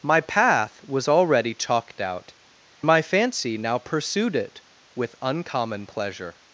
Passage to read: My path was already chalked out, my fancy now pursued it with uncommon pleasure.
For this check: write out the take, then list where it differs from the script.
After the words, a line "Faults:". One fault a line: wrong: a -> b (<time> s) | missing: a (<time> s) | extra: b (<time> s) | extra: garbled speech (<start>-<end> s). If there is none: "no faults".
My path was already chalked out, my fancy now pursued it with uncommon pleasure.
Faults:
no faults